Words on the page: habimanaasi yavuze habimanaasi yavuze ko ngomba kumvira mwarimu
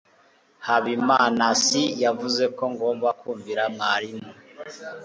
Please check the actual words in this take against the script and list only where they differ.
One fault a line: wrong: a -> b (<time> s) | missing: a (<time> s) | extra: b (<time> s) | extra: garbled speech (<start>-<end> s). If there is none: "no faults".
missing: habimanaasi yavuze (2.4 s)